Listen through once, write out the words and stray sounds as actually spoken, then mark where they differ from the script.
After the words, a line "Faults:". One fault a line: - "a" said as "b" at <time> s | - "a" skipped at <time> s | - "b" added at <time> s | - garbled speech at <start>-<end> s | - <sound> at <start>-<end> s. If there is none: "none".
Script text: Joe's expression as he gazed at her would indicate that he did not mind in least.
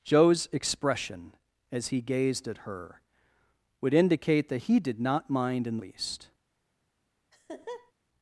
Joe's expression as he gazed at her would indicate that he did not mind in least.
Faults:
- laugh at 7.3-7.9 s